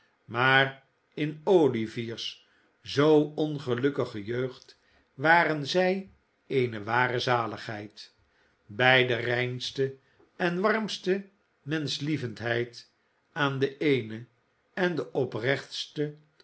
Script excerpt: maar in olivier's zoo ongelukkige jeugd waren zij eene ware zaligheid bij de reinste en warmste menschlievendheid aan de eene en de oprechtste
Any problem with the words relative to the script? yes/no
no